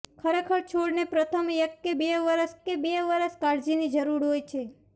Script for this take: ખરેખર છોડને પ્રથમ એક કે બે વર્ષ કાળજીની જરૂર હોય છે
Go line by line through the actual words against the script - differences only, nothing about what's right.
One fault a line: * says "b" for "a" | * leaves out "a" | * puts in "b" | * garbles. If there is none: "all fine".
* puts in "કે બે વર્ષ"